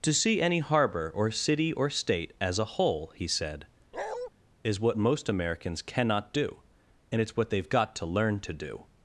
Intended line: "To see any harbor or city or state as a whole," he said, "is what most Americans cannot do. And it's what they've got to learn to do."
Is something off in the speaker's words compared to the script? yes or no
no